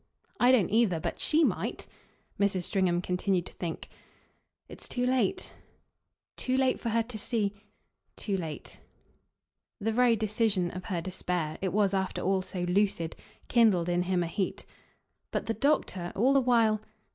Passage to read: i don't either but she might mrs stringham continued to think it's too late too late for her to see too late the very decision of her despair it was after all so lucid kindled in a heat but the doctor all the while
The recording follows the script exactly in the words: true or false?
false